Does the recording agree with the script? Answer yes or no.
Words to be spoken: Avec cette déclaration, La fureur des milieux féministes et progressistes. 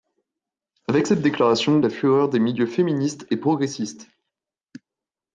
yes